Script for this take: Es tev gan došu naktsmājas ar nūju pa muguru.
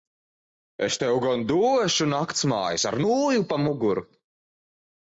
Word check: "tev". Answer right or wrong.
right